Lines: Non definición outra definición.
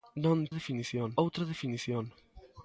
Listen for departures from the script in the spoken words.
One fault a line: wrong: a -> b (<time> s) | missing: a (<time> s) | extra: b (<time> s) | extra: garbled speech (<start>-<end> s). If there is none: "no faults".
no faults